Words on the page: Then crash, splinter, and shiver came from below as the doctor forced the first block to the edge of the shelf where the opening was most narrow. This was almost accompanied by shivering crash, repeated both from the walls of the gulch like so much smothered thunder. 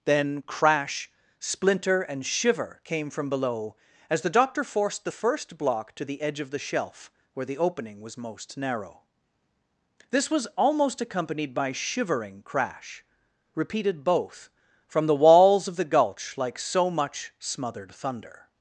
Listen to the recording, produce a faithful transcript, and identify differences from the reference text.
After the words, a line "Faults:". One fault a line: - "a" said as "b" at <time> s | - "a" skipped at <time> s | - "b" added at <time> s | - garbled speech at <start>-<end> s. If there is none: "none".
Then crash, splinter, and shiver came from below as the doctor forced the first block to the edge of the shelf where the opening was most narrow. This was almost accompanied by shivering crash, repeated both from the walls of the gulch like so much smothered thunder.
Faults:
none